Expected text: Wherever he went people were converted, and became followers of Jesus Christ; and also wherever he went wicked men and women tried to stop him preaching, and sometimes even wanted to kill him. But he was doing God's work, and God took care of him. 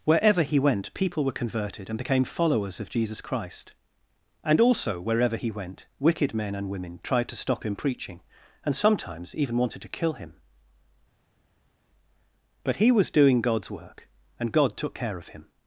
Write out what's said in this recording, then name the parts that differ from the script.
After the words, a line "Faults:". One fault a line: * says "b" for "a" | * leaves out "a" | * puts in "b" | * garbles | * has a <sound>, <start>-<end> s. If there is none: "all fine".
Wherever he went people were converted, and became followers of Jesus Christ; and also wherever he went wicked men and women tried to stop him preaching, and sometimes even wanted to kill him. But he was doing God's work, and God took care of him.
Faults:
all fine